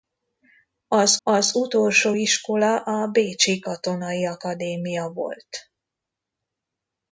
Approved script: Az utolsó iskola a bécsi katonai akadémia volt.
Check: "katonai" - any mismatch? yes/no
no